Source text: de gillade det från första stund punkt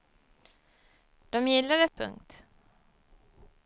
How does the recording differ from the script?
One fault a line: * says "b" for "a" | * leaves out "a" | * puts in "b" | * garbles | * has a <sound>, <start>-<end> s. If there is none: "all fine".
* leaves out "från första stund"